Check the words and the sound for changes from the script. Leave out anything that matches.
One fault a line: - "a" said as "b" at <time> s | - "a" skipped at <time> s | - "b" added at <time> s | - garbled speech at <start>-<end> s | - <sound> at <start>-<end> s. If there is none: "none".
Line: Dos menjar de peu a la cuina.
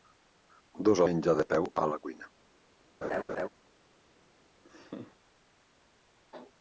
- laugh at 3.0-3.5 s
- laugh at 4.6-5.2 s